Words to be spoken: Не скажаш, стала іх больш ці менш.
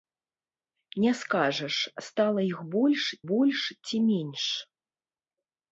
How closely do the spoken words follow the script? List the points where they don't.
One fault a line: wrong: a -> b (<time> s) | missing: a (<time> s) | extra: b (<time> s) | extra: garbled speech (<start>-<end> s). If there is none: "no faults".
extra: больш (3.3 s)